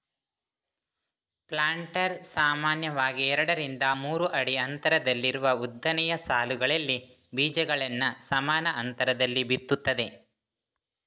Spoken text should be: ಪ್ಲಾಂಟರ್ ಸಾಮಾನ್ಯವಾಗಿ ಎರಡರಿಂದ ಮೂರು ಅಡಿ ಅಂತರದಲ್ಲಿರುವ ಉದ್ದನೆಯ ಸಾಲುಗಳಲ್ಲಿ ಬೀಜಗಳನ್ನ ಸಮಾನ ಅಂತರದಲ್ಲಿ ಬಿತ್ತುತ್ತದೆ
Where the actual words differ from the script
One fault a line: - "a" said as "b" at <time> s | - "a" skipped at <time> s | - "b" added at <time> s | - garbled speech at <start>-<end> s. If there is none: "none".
none